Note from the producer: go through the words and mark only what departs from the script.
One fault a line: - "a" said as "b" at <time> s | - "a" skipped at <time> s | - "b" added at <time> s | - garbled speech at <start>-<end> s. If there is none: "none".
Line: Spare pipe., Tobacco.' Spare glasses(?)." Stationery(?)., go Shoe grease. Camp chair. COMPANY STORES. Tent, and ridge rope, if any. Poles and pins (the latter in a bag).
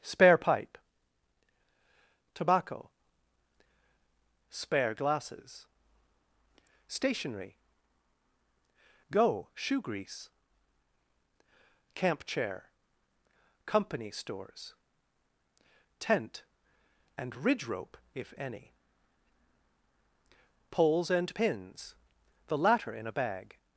none